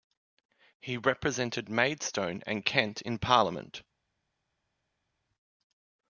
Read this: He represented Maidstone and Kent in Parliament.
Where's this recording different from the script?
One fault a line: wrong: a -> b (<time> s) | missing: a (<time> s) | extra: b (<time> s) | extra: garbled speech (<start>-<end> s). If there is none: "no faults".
no faults